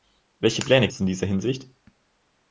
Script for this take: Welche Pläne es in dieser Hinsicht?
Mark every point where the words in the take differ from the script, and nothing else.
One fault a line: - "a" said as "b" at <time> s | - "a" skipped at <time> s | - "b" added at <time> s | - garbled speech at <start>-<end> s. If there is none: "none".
none